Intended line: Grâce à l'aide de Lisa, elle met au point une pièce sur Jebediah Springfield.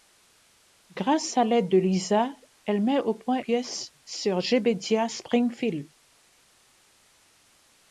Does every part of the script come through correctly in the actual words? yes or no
no